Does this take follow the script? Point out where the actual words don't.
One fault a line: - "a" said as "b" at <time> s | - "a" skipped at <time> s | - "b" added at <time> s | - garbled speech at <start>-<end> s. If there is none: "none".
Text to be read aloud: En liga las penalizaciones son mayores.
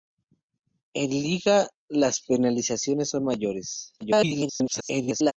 - garbled speech at 4.0-5.3 s